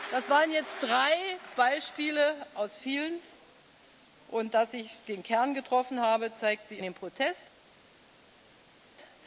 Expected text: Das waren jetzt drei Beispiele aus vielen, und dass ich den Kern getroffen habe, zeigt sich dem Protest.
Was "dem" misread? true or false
false